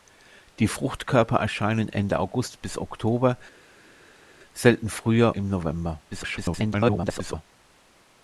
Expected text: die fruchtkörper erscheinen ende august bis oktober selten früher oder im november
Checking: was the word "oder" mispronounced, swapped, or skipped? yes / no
yes